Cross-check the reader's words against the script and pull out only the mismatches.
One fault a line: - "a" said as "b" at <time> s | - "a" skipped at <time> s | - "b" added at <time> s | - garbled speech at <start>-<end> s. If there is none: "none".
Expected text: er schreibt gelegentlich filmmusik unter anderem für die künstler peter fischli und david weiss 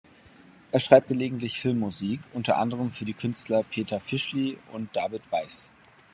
none